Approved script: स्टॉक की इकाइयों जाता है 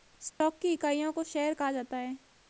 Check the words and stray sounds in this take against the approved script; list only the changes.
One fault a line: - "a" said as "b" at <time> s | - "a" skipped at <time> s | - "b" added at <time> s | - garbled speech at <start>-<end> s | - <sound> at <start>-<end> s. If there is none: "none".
- dropout at 0.3-0.4 s
- "को शेयर कहा" added at 1.1 s